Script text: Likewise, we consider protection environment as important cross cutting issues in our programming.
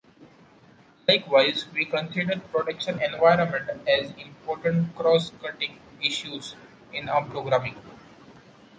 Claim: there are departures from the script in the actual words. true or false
false